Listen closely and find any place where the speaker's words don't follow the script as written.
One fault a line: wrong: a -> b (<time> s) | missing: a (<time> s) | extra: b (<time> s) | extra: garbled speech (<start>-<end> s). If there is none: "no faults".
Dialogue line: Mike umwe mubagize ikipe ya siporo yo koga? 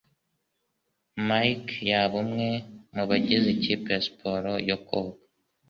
extra: yaba (1.9 s)